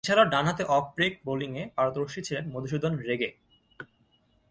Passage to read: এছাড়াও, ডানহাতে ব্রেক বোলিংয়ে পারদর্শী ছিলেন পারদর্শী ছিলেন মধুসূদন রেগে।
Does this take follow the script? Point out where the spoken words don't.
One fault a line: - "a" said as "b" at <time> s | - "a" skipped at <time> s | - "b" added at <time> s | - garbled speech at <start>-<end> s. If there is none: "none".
- "অফ" added at 0.7 s
- "পারদর্শী ছিলেন" skipped at 2.4 s